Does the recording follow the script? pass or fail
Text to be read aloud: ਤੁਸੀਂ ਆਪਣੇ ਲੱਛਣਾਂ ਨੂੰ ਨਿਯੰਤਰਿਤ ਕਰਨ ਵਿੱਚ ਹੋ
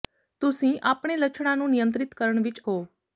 pass